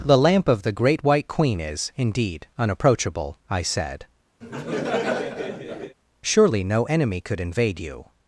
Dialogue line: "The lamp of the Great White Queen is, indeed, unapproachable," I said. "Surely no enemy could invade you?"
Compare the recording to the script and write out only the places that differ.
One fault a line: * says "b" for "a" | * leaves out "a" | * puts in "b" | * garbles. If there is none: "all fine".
all fine